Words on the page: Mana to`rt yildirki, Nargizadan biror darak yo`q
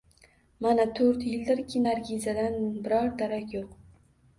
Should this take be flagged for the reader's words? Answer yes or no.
no